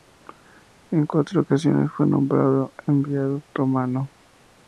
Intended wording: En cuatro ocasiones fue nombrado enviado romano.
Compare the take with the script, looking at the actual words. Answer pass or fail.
pass